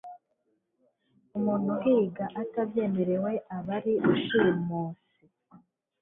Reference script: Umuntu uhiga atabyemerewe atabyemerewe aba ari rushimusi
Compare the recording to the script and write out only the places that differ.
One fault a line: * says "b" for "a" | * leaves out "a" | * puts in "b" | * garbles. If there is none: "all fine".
* leaves out "atabyemerewe"